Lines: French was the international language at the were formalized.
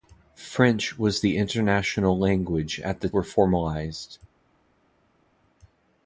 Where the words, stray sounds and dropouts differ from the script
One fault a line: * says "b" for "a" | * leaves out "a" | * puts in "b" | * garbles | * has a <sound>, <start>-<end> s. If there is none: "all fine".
all fine